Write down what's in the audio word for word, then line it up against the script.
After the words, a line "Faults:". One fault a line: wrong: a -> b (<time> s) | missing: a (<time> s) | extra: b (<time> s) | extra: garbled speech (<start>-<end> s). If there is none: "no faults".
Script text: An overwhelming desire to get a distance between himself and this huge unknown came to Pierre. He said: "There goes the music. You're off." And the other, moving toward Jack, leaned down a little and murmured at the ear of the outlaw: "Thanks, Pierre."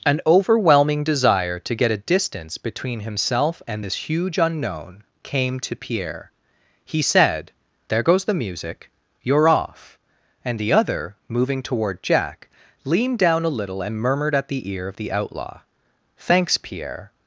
An overwhelming desire to get a distance between himself and this huge unknown came to Pierre. He said: "There goes the music. You're off." And the other, moving toward Jack, leaned down a little and murmured at the ear of the outlaw: "Thanks, Pierre."
Faults:
no faults